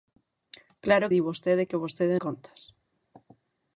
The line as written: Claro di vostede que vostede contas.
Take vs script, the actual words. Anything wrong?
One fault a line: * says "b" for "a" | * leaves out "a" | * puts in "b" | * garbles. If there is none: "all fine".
all fine